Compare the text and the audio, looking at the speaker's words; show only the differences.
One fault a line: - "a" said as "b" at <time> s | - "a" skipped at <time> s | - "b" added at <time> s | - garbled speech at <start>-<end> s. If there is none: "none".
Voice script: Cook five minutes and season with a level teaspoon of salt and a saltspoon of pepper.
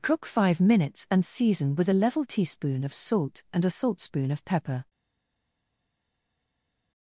none